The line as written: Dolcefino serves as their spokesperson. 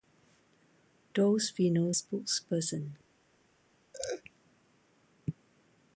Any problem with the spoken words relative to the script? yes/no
yes